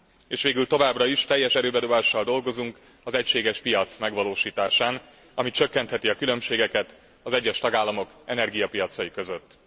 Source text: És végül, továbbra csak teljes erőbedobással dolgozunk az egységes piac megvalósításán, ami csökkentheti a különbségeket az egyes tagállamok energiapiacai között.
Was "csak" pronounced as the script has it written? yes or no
no